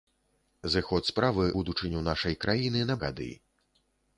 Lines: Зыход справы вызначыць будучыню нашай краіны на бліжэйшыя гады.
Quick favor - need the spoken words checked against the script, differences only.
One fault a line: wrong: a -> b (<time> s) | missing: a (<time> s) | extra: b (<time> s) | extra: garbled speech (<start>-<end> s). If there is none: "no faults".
missing: вызначыць (1.4 s)
missing: бліжэйшыя (3.0 s)